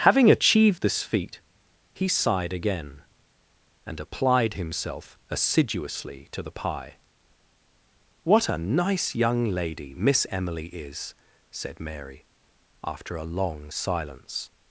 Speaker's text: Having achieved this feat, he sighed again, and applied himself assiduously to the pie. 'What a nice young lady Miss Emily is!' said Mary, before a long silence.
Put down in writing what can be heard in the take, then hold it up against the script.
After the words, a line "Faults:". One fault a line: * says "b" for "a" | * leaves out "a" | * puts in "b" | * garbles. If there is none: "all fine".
Having achieved this feat, he sighed again, and applied himself assiduously to the pie. 'What a nice young lady Miss Emily is!' said Mary, after a long silence.
Faults:
* says "after" for "before"